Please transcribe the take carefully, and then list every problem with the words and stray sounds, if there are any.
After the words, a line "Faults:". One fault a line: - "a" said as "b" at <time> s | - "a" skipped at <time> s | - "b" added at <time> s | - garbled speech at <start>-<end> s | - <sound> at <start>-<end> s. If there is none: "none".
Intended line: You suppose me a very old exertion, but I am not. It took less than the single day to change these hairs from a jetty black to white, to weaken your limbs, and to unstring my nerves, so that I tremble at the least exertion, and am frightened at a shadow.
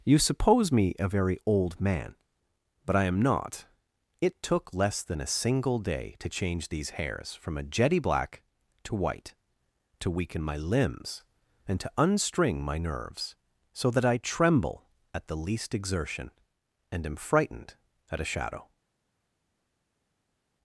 You suppose me a very old man, but I am not. It took less than a single day to change these hairs from a jetty black to white, to weaken my limbs, and to unstring my nerves, so that I tremble at the least exertion, and am frightened at a shadow.
Faults:
- "exertion" said as "man" at 1.8 s
- "the" said as "a" at 5.2 s
- "your" said as "my" at 10.4 s